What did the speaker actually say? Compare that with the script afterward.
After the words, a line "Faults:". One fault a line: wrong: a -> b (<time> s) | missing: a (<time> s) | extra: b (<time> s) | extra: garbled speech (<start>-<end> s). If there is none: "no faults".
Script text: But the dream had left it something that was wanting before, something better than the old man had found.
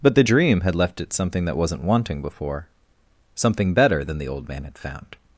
But the dream had left it something that wasn't wanting before, something better than the old man had found.
Faults:
wrong: was -> wasn't (1.6 s)